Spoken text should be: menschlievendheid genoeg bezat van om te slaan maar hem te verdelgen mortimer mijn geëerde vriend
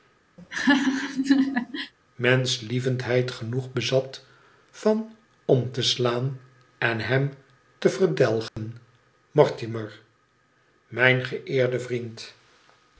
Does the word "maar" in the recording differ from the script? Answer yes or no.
yes